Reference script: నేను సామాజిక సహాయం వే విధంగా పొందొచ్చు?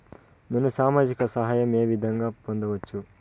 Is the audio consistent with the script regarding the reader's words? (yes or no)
yes